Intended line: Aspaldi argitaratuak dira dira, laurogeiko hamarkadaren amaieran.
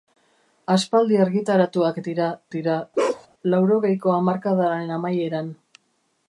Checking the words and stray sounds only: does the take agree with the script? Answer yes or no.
no